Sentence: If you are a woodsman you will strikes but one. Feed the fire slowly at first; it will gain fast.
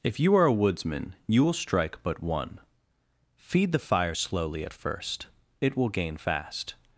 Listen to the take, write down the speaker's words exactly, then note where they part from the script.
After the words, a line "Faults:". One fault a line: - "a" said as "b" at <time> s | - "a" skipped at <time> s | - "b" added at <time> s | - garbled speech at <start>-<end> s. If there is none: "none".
If you are a woodsman you will strike but one. Feed the fire slowly at first; it will gain fast.
Faults:
- "strikes" said as "strike" at 1.5 s